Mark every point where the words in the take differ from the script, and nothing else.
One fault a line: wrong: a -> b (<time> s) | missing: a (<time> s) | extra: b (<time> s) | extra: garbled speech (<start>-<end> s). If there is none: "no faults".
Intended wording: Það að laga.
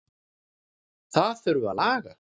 extra: þurfi (1.4 s)